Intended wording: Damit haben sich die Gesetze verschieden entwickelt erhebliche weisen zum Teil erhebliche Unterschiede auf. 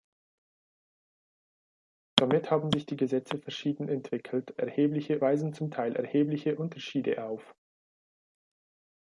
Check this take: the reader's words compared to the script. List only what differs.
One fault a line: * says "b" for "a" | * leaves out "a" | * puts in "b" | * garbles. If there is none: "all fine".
all fine